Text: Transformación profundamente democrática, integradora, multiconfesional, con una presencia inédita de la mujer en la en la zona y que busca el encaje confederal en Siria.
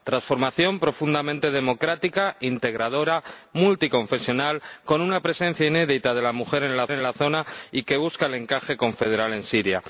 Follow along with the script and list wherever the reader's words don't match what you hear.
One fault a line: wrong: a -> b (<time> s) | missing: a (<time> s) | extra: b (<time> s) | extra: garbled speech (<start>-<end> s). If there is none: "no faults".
no faults